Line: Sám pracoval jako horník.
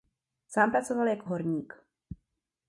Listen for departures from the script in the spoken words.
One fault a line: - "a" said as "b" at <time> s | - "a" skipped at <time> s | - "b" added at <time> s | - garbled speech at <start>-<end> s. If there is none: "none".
none